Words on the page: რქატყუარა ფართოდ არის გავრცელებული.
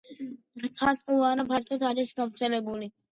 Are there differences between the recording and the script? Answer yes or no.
no